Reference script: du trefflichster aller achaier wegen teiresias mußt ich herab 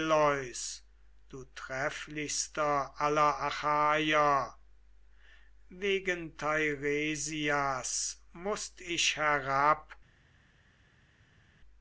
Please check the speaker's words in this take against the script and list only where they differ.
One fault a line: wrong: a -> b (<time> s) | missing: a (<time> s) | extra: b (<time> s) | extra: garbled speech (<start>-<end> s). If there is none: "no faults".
no faults